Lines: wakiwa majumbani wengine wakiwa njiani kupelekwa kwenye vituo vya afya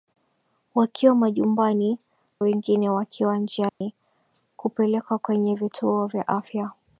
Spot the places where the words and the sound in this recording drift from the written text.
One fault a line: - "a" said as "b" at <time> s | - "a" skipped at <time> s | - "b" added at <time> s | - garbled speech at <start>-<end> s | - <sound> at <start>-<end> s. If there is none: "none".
- dropout at 3.7-3.8 s